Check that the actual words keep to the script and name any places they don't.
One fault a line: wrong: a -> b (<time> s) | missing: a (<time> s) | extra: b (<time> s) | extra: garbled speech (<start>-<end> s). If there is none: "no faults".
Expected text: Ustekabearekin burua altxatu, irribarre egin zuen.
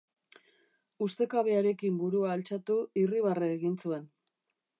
no faults